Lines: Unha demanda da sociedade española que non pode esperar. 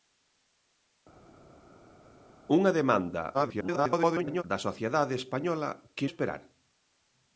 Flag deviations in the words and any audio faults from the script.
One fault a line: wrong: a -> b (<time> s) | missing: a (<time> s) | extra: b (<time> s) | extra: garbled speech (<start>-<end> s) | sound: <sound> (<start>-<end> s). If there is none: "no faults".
extra: garbled speech (3.3-4.4 s)
missing: non pode (6.1 s)